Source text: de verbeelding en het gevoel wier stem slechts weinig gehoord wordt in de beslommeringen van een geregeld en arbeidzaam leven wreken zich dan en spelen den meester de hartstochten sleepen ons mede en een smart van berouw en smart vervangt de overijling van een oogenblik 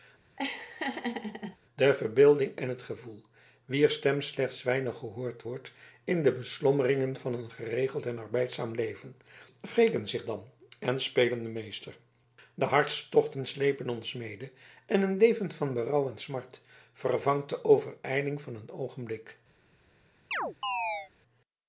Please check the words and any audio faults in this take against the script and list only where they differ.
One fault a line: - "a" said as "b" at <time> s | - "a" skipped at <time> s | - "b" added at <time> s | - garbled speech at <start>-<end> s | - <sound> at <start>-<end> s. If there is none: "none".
- laugh at 0.4-1.6 s
- "smart" said as "leven" at 15.2 s
- chirp at 20.3-21.1 s